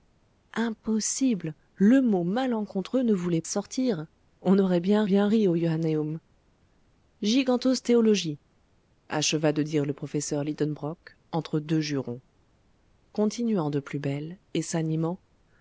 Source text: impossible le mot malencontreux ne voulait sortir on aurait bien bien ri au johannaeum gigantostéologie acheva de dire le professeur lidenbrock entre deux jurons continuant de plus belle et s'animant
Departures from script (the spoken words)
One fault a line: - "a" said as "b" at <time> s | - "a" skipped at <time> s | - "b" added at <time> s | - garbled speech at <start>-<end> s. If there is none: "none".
none